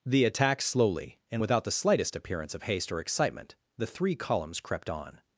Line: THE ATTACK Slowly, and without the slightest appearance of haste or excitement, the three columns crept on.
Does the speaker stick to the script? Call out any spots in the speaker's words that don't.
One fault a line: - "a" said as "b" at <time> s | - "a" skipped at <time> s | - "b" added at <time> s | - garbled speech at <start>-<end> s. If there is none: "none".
none